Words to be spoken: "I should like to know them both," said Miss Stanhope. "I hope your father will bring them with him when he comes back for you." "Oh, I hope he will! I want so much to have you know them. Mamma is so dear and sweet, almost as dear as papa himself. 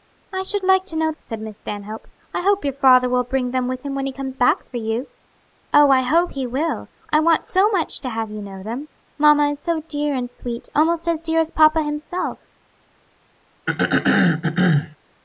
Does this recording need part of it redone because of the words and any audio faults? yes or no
yes